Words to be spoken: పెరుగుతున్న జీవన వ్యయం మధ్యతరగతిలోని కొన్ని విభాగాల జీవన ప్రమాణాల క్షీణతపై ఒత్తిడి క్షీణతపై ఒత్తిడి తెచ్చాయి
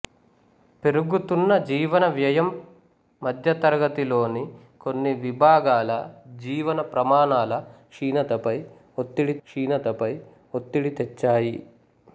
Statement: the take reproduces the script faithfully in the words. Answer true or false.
true